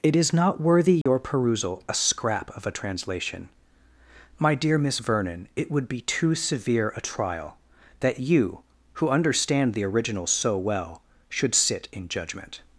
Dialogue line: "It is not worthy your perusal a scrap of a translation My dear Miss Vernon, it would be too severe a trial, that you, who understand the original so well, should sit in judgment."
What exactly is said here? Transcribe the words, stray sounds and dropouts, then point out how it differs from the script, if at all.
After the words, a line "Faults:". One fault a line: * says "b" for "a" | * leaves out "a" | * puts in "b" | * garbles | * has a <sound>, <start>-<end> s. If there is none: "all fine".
"It is not worthy your perusal a scrap of a translation My dear Miss Vernon, it would be too severe a trial, that you, who understand the original so well, should sit in judgment."
Faults:
* has a dropout, 1.0-1.1 s